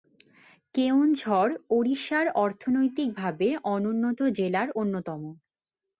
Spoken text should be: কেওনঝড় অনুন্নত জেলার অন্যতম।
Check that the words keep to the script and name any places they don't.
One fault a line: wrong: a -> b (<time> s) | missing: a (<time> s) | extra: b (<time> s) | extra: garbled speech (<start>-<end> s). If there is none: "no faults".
extra: ওড়িশার অর্থনৈতিকভাবে (1.7 s)